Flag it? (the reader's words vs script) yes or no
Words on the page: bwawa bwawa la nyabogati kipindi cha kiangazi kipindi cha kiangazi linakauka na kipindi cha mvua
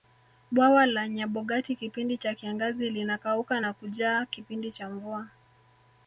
yes